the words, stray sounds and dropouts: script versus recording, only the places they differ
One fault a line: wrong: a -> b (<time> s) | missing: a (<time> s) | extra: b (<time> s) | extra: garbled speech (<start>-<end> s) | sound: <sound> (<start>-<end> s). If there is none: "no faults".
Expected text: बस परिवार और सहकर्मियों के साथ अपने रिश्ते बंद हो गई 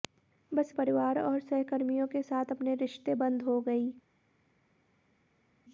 no faults